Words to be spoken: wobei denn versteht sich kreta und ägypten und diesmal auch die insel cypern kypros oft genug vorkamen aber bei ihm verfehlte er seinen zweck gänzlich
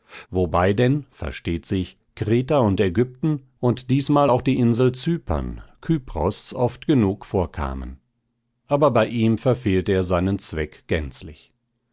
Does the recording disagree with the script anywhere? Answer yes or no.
no